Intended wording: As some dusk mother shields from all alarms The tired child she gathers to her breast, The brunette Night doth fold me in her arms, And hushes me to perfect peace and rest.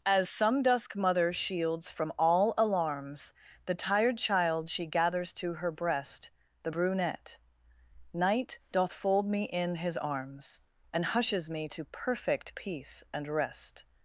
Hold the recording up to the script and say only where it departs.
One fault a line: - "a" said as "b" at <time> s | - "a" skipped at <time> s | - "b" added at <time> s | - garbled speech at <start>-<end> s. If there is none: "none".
- "her" said as "his" at 9.7 s